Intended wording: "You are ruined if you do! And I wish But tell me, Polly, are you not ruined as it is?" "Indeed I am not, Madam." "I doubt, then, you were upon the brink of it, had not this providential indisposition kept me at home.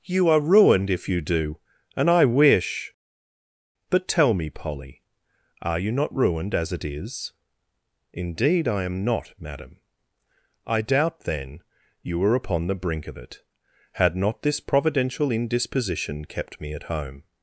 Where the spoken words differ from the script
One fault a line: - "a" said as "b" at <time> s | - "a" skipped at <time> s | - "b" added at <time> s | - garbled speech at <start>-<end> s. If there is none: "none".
none